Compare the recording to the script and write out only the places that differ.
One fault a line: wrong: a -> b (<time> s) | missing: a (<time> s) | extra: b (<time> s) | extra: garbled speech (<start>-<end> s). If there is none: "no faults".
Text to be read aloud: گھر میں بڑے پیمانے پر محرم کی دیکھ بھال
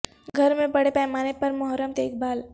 missing: کی (1.9 s)